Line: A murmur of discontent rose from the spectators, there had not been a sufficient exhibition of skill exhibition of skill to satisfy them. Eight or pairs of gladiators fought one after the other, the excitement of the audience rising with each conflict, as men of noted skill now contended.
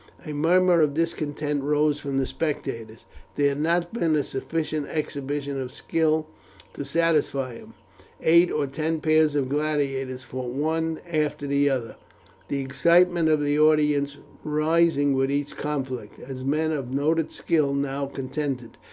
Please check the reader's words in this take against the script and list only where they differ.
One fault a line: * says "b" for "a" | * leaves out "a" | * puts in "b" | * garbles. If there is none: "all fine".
* leaves out "exhibition of skill"
* puts in "ten"